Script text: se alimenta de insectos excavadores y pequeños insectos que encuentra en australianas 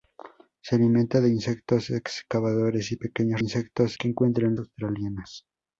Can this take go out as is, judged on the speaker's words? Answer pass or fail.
pass